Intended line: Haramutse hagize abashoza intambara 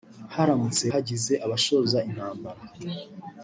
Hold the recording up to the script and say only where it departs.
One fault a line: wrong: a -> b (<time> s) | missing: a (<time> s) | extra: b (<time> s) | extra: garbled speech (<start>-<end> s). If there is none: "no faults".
no faults